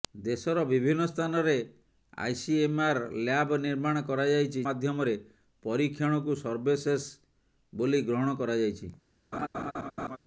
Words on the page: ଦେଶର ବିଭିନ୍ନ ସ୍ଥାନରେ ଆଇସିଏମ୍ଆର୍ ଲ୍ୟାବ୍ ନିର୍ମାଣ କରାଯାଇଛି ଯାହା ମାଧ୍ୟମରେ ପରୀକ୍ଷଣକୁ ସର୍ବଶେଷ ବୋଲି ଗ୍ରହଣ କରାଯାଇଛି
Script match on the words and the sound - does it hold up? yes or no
no